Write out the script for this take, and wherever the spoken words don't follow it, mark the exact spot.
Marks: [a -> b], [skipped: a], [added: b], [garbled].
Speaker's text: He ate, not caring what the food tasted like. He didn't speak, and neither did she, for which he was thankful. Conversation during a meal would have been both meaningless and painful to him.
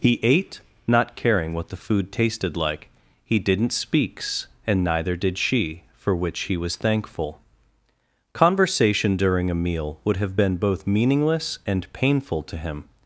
He ate, not caring what the food tasted like. He didn't [speak, -> speaks] and neither did she, for which he was thankful. Conversation during a meal would have been both meaningless and painful to him.